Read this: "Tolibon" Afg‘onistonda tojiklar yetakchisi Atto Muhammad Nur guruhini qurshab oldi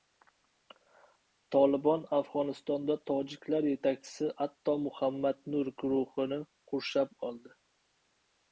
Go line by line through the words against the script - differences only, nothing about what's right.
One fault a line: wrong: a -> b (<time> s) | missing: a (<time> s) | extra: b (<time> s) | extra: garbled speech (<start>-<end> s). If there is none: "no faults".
no faults